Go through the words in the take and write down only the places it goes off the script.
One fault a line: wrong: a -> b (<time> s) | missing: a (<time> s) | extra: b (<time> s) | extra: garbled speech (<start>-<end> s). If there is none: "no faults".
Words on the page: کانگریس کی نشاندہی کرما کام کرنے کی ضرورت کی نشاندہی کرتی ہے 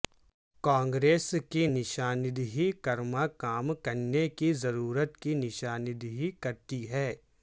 no faults